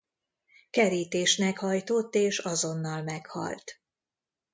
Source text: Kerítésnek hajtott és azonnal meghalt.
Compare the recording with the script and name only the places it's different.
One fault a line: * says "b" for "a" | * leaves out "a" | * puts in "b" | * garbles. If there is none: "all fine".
all fine